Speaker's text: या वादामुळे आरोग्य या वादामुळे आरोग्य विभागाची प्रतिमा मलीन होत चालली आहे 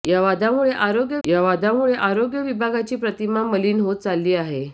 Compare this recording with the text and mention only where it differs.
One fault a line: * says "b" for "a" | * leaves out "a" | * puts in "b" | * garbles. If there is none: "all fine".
all fine